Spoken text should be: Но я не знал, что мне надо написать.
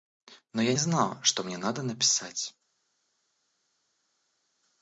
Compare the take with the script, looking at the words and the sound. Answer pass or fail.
fail